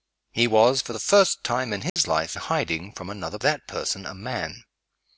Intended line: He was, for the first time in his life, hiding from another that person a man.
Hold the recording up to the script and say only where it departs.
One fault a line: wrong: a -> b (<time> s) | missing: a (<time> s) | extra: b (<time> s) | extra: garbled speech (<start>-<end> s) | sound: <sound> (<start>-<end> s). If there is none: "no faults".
sound: dropout (1.9-2.0 s)